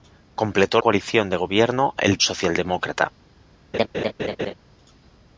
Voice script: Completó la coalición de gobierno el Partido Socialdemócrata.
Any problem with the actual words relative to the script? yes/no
yes